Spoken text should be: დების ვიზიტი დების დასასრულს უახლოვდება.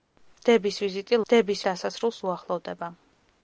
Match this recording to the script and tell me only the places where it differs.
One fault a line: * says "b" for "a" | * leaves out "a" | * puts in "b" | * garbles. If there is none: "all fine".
all fine